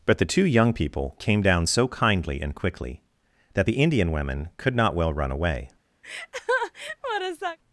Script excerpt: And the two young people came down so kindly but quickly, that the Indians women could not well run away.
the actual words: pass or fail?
fail